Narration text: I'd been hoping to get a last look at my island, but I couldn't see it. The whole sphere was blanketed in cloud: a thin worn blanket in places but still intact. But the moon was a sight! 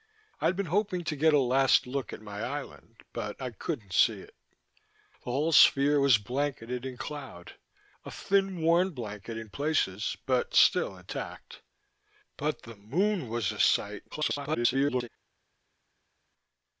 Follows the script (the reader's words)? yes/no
no